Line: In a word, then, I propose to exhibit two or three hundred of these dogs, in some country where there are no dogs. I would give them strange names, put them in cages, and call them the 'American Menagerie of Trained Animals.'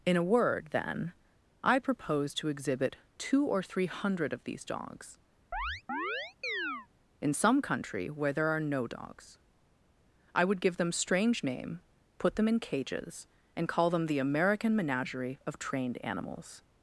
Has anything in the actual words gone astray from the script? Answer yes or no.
yes